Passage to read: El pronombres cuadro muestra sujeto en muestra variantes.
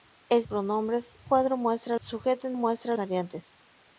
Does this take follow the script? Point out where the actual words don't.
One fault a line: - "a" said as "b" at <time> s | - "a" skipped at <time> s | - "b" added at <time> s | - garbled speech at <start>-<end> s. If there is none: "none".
none